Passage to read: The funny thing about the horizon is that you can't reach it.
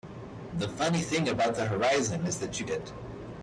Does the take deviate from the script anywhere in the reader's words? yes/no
yes